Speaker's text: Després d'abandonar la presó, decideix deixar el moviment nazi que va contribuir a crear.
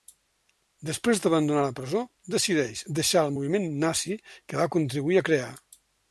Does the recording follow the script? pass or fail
pass